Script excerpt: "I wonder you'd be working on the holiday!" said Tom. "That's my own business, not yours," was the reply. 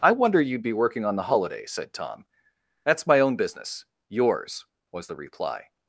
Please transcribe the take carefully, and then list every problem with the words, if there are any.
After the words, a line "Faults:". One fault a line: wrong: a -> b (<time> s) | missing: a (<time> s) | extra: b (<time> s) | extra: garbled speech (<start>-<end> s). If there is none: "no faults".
"I wonder you'd be working on the holiday!" said Tom. "That's my own business, yours," was the reply.
Faults:
missing: not (3.9 s)